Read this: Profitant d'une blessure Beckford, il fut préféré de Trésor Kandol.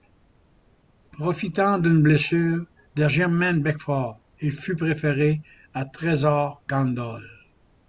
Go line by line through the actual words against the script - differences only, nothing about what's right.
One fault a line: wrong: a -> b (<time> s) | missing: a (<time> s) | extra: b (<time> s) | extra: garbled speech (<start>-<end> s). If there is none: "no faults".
extra: de Jermaine (3.0 s)
wrong: de -> à (5.7 s)